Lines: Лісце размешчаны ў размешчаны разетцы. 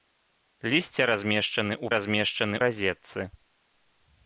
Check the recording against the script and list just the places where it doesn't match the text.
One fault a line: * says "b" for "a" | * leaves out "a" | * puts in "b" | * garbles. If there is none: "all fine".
all fine